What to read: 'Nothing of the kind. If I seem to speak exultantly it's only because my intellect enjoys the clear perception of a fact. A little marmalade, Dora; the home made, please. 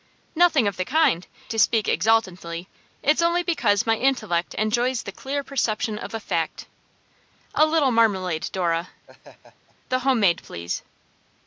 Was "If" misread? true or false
true